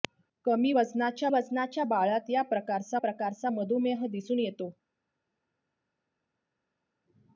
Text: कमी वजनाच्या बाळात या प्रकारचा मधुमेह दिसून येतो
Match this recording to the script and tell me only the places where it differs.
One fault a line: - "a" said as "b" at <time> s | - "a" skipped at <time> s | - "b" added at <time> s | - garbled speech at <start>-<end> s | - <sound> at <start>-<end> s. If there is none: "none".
- "वजनाच्या" added at 1.3 s
- "प्रकारचा" added at 3.0 s